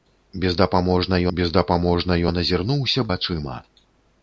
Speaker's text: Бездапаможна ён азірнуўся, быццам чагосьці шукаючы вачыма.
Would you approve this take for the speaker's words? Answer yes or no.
no